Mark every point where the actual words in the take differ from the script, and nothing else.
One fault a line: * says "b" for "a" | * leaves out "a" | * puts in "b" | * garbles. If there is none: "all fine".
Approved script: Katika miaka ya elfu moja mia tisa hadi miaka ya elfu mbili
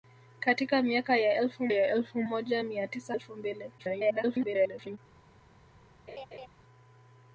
* puts in "ya elfu"
* leaves out "hadi miaka ya"
* garbles